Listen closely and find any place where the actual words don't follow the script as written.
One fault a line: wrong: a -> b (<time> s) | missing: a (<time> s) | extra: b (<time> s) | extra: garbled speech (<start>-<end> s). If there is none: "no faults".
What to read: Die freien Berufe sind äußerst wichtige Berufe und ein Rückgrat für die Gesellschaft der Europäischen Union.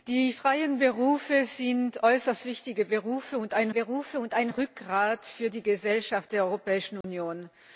extra: Berufe und ein (3.7 s)